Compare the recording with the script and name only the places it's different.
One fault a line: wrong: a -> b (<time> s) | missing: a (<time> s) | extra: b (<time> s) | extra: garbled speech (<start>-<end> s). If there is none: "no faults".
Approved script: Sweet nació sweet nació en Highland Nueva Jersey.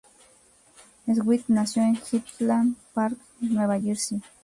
missing: sweet nació (1.8 s)
extra: Park (3.0 s)